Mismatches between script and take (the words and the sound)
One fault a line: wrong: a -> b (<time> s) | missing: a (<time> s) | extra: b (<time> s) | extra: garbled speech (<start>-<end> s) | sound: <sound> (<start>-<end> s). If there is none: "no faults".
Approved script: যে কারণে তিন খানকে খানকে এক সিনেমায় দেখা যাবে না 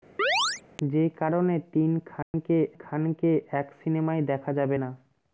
sound: chirp (0.2-0.6 s)
sound: dropout (2.2-2.3 s)